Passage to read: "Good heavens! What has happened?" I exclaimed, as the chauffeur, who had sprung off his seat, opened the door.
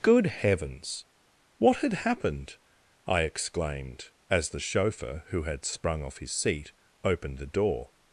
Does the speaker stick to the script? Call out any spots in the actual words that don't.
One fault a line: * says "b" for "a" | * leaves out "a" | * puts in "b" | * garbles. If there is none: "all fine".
* says "had" for "has"